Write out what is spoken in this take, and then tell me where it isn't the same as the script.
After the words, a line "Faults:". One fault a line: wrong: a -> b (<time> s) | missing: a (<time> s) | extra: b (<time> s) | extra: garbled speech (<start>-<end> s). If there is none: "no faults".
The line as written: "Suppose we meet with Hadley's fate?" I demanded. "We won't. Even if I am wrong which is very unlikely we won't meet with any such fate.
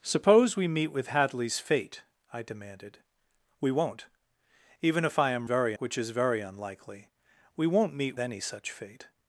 "Suppose we meet with Hadley's fate?" I demanded. "We won't. Even if I am very which is very unlikely we won't meet any such fate.
Faults:
wrong: wrong -> very (5.4 s)
missing: with (8.2 s)